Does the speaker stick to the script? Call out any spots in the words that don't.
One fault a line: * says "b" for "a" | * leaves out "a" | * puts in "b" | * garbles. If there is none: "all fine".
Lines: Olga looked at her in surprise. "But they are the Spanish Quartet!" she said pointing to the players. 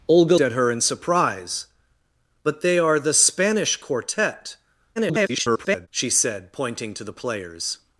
* leaves out "looked"
* garbles